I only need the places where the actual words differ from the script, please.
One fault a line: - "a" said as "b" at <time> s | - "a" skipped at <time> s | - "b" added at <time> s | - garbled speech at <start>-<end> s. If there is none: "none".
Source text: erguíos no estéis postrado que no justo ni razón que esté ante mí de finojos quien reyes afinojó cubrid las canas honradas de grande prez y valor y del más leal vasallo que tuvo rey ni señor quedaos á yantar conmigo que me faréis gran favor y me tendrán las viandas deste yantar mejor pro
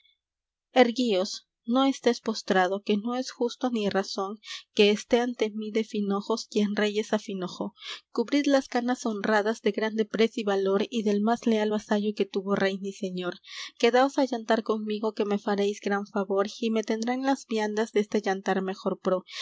- "es" added at 3.1 s